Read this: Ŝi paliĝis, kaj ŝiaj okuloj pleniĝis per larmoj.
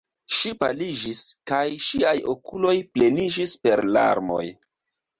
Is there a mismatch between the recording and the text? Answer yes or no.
no